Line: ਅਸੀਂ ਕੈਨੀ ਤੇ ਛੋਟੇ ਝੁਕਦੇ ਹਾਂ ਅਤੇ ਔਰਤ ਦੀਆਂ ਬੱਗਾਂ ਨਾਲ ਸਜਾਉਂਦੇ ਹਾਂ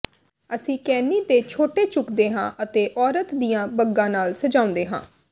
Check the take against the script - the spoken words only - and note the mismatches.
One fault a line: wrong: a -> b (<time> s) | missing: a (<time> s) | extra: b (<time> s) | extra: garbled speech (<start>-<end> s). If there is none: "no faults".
no faults